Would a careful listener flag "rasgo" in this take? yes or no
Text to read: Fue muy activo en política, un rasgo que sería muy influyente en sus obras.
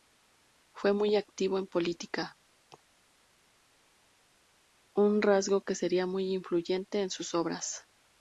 no